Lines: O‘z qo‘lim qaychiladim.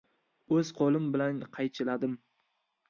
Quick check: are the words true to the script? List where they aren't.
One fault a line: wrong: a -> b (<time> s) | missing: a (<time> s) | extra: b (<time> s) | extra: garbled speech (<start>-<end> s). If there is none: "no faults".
extra: bilan (1.2 s)